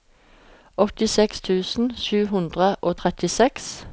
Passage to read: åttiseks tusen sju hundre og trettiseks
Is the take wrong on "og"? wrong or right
right